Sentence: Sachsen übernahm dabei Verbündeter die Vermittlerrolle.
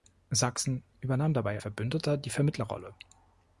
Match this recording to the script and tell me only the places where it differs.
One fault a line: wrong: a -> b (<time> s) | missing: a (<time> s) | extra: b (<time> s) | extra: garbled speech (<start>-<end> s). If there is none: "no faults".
no faults